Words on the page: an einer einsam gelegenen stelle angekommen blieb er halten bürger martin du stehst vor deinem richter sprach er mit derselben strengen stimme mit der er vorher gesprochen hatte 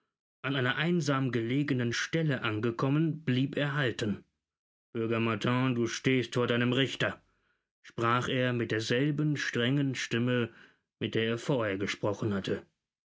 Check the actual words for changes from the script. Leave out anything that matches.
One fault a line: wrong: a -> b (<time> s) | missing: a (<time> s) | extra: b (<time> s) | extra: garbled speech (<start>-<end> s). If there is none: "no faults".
no faults